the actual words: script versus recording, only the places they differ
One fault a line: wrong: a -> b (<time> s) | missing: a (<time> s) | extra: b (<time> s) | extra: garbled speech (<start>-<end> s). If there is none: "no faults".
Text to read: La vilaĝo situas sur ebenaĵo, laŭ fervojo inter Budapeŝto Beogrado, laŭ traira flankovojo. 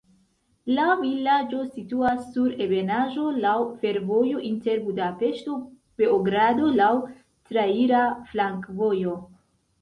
no faults